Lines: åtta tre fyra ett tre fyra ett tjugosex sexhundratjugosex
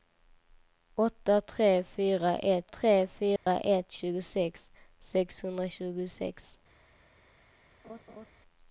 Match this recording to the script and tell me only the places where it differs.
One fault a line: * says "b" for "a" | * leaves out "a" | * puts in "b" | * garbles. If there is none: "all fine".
all fine